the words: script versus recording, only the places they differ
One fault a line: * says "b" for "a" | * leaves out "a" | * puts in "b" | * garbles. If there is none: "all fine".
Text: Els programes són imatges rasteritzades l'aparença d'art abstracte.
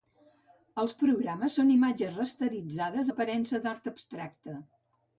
all fine